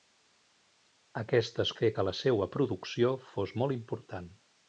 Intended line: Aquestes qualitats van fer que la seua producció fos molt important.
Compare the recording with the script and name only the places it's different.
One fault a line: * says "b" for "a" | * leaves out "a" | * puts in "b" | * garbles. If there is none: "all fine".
* leaves out "qualitats van"